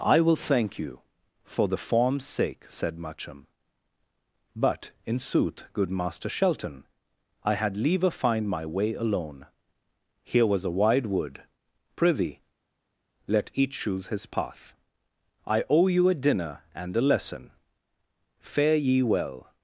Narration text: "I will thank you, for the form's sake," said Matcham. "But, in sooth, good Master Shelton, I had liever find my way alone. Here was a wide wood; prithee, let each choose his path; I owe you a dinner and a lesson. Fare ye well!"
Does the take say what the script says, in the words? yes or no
yes